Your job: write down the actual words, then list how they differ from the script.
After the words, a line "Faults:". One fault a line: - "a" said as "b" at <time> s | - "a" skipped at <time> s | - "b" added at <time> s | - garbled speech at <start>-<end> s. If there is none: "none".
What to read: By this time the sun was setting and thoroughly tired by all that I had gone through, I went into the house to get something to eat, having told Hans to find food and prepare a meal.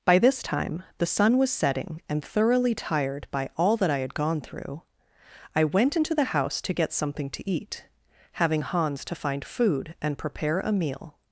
By this time the sun was setting and thoroughly tired by all that I had gone through, I went into the house to get something to eat, having Hans to find food and prepare a meal.
Faults:
- "told" skipped at 8.6 s